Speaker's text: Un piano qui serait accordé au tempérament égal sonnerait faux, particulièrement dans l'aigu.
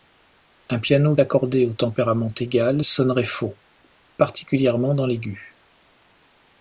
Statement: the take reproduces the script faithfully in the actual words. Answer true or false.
false